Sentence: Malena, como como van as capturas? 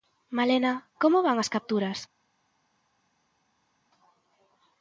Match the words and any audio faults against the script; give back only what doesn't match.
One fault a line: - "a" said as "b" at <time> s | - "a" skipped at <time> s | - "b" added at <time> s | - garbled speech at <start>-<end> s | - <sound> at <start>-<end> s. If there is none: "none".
- "como" skipped at 1.2 s